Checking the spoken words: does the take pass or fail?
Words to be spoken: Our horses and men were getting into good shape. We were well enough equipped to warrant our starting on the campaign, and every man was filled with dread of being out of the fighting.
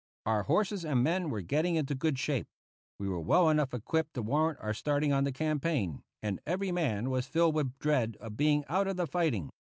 pass